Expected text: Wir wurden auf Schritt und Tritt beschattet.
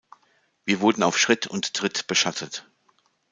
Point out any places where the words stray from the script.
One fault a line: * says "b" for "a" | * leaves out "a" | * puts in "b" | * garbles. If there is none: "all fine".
all fine